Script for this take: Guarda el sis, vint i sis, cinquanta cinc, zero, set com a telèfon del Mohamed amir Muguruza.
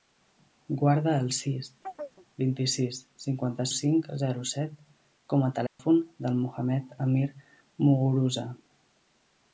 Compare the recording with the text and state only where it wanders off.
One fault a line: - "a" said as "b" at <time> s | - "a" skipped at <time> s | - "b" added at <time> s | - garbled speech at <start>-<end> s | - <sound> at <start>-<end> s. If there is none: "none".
- chirp at 1.8-2.3 s
- dropout at 5.7-5.8 s